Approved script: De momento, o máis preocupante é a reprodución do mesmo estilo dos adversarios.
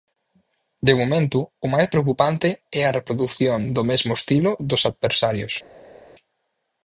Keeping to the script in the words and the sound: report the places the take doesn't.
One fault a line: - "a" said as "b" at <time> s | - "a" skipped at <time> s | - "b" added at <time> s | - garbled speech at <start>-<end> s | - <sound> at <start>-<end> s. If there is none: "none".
none